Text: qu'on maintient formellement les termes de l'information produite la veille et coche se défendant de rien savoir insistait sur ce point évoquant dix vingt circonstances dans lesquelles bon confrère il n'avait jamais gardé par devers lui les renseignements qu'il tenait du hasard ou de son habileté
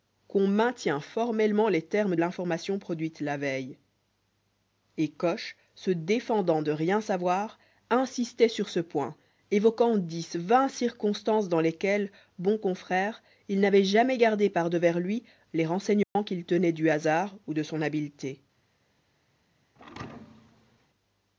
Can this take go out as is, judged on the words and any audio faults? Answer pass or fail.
fail